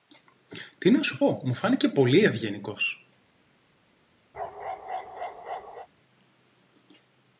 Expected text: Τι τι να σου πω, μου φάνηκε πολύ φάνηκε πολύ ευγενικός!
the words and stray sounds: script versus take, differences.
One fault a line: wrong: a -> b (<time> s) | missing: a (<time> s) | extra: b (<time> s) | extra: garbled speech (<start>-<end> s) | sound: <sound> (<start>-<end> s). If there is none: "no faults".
missing: τι (0.9 s)
missing: φάνηκε πολύ (2.2 s)
sound: bark (4.3-5.9 s)